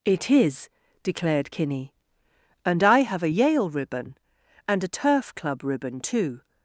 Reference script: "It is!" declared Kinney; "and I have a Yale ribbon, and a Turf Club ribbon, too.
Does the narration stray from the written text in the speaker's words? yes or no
no